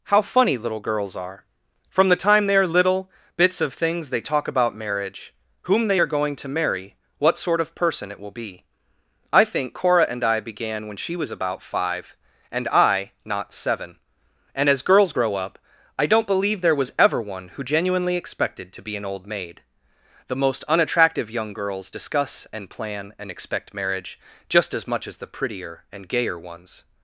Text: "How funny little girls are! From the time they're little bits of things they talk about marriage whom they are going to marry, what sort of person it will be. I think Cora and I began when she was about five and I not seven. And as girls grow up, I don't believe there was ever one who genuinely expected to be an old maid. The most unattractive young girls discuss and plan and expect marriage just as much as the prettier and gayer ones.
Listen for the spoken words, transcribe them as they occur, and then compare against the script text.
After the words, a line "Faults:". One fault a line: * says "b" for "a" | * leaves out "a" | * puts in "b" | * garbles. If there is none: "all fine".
"How funny little girls are! From the time they're little bits of things they talk about marriage whom they are going to marry, what sort of person it will be. I think Cora and I began when she was about five and I not seven. And as girls grow up, I don't believe there was ever one who genuinely expected to be an old maid. The most unattractive young girls discuss and plan and expect marriage just as much as the prettier and gayer ones.
Faults:
all fine